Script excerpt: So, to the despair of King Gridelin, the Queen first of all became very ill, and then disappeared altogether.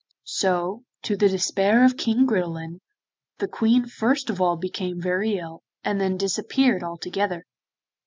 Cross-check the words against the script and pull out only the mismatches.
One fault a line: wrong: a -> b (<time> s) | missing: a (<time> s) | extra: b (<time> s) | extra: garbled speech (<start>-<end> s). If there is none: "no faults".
no faults